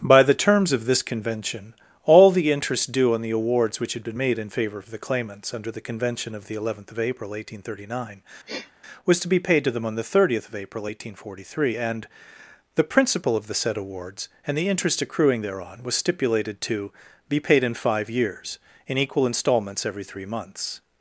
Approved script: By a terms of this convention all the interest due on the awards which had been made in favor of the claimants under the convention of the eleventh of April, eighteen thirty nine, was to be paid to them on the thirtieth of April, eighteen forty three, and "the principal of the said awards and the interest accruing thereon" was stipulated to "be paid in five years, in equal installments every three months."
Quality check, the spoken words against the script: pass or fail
fail